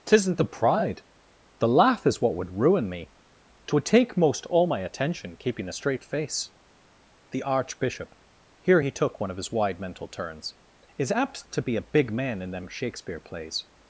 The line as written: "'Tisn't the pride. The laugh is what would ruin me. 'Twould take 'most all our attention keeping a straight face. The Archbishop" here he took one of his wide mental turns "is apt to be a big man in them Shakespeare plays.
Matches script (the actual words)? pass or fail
fail